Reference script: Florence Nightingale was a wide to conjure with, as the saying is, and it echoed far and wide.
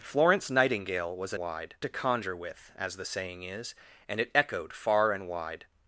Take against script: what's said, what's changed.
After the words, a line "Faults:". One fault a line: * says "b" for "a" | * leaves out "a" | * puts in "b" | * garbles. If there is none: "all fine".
Florence Nightingale was a wide to conjure with, as the saying is, and it echoed far and wide.
Faults:
all fine